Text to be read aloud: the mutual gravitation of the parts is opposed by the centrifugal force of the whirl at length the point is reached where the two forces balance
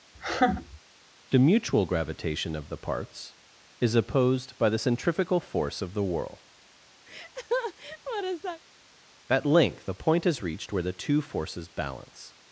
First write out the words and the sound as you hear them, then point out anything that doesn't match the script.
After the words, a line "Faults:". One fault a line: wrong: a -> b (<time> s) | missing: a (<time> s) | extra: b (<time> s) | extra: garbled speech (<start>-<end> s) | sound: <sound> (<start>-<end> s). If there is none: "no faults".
the mutual gravitation of the parts is opposed by the centrifugal force of the whirl at length the point is reached where the two forces balance
Faults:
sound: laugh (0.1-0.8 s)
sound: laugh (7.1-8.6 s)